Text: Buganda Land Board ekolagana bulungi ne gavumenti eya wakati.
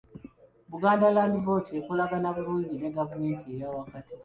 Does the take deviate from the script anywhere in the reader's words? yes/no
no